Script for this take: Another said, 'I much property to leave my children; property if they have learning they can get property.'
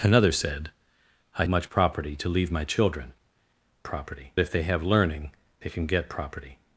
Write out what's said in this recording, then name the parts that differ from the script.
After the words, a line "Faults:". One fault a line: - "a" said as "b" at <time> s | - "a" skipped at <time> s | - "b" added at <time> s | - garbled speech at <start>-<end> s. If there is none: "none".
Another said, 'I much property to leave my children; property if they have learning they can get property.'
Faults:
none